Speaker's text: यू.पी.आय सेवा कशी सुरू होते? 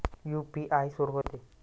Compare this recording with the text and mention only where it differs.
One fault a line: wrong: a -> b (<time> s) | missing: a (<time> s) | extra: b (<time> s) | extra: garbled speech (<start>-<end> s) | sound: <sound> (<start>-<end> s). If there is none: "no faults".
missing: सेवा कशी (0.9 s)
sound: dropout (1.2-1.2 s)